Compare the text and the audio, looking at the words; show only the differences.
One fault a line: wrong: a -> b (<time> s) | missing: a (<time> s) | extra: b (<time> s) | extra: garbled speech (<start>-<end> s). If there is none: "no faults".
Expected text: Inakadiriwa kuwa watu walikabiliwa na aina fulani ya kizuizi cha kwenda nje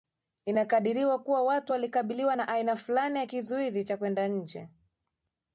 no faults